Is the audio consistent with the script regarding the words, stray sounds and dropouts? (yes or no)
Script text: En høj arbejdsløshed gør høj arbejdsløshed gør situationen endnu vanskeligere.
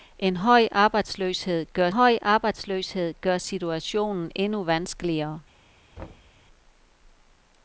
no